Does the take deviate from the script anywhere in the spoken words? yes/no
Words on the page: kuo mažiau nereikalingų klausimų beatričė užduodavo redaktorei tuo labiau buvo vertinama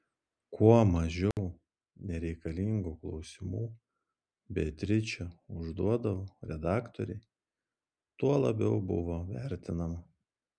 no